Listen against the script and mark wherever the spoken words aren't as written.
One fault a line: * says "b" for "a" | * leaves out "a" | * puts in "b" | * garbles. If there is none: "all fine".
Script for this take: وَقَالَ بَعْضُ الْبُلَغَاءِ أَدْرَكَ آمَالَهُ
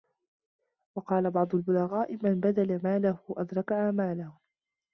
* puts in "مَنْ بَذَلَ مَالَهُ"